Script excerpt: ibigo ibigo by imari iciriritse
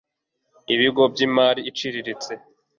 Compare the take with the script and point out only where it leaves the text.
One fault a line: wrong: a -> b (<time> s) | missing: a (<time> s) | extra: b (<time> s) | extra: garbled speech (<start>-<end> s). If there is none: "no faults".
missing: ibigo (1.0 s)